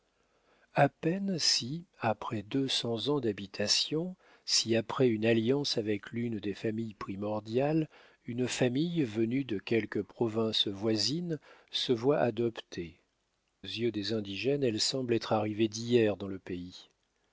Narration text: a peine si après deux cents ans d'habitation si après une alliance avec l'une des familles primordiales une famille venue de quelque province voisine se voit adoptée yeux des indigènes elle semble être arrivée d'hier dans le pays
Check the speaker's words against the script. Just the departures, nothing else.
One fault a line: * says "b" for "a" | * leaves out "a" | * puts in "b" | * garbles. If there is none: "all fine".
all fine